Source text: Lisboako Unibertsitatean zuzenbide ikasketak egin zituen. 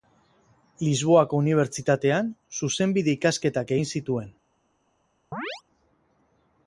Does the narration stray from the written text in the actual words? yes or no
no